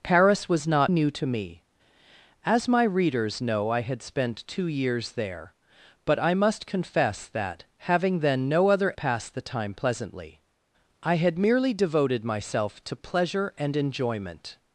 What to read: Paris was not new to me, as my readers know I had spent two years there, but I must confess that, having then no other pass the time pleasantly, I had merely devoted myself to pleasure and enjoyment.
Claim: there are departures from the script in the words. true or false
false